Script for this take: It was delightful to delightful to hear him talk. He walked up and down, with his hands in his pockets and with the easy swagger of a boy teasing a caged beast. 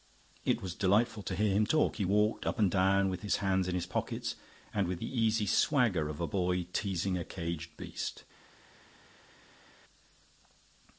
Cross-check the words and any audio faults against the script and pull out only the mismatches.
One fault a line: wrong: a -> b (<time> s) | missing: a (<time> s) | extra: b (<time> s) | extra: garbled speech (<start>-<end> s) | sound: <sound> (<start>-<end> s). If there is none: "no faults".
missing: delightful to (1.4 s)